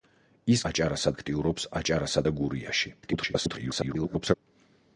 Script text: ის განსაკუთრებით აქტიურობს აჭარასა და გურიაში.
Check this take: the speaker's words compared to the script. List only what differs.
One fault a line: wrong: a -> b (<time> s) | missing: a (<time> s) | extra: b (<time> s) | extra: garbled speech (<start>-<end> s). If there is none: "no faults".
wrong: განსაკუთრებით -> აჭარასა (0.7 s)
extra: garbled speech (3.0-4.3 s)